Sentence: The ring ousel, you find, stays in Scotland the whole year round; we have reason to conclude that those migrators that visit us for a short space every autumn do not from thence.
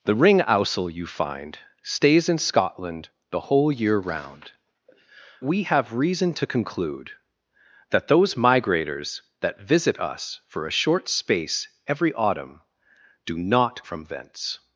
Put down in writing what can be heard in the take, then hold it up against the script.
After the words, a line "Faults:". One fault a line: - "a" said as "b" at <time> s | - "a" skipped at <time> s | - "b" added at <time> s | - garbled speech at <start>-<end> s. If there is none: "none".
The ring ousel, you find, stays in Scotland the whole year round; we have reason to conclude that those migrators that visit us for a short space every autumn do not from thence.
Faults:
none